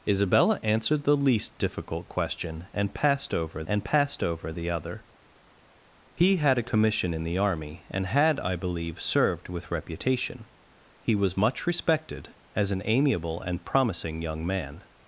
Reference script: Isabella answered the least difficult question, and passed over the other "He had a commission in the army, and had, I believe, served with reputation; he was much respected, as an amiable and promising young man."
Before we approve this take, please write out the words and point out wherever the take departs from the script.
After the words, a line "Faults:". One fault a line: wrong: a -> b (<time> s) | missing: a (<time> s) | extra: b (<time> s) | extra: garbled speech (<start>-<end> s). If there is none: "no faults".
Isabella answered the least difficult question, and passed over and passed over the other "He had a commission in the army, and had, I believe, served with reputation; he was much respected, as an amiable and promising young man."
Faults:
extra: and passed over (3.7 s)